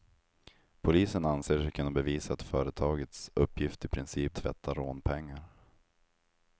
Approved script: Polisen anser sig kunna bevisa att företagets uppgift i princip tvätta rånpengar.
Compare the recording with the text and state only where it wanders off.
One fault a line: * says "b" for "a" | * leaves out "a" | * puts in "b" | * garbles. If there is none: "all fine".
all fine